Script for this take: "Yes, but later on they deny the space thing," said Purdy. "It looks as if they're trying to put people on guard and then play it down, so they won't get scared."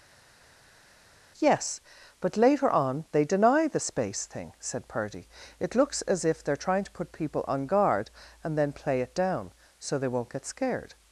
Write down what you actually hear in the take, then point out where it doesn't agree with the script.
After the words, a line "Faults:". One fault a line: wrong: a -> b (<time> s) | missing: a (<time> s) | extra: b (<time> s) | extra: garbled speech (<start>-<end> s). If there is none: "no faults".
"Yes, but later on they deny the space thing," said Purdy. "It looks as if they're trying to put people on guard and then play it down, so they won't get scared."
Faults:
no faults